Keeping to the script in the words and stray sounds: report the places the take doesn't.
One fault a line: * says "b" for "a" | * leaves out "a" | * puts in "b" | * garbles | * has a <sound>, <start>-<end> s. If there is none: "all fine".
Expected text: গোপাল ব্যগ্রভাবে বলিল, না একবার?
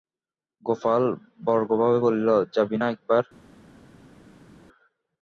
* puts in "যাবি"